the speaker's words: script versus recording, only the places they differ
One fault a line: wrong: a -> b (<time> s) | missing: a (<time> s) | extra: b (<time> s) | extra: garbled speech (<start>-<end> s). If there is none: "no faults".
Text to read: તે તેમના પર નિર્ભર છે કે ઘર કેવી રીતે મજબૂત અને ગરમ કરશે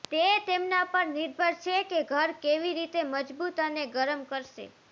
no faults